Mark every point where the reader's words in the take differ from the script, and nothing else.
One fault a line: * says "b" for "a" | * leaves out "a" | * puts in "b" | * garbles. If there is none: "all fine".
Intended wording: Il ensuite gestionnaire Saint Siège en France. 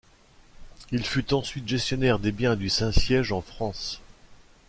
* puts in "fut"
* puts in "des biens du"